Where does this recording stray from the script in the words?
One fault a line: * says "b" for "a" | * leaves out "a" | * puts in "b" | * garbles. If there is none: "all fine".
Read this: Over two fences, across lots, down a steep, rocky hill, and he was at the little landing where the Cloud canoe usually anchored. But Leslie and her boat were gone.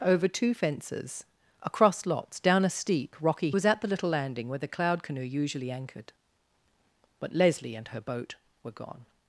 * leaves out "hill and he"